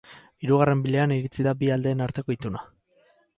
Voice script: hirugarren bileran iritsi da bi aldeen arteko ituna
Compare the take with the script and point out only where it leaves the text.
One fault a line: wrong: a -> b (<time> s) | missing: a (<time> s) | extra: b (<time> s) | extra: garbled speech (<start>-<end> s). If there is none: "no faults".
no faults